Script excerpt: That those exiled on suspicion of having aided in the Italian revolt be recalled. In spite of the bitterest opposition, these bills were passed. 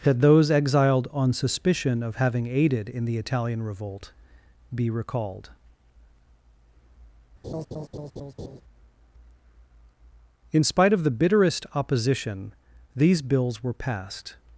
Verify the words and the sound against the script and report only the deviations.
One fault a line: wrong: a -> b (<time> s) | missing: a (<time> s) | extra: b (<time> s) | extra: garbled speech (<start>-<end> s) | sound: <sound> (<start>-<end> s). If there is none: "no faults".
sound: laugh (7.4-8.6 s)